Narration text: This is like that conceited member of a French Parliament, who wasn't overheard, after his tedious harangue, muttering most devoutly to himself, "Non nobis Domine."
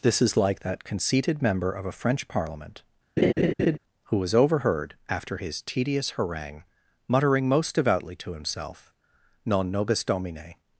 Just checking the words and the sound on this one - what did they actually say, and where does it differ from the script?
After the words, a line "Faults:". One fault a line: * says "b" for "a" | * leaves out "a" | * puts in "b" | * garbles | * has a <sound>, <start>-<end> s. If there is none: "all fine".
This is like that conceited member of a French Parliament, who was overheard, after his tedious harangue, muttering most devoutly to himself, "Non nobis Domine."
Faults:
* has a laugh, 3.2-3.8 s
* says "was" for "wasn't"